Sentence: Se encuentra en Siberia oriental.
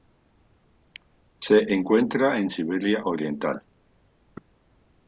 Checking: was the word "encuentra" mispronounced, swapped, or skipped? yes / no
no